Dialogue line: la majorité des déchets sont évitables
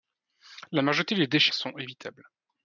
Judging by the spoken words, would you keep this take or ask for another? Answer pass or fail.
pass